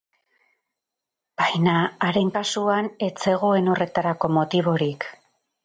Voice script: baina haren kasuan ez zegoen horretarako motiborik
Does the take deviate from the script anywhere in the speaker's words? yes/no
no